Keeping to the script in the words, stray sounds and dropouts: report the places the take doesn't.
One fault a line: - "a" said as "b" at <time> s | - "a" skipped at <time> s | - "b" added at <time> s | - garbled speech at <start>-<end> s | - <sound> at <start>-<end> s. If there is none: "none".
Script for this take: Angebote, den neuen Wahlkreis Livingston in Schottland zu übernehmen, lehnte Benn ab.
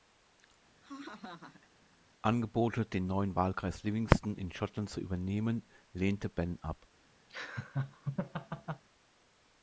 - laugh at 0.8-1.7 s
- laugh at 7.3-8.8 s